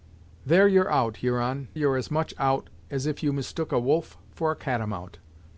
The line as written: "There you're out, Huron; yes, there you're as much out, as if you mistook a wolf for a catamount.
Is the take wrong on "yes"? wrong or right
wrong